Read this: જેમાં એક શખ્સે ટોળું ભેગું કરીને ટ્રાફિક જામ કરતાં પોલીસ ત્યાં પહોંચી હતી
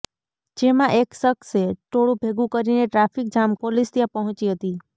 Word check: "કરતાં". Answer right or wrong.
wrong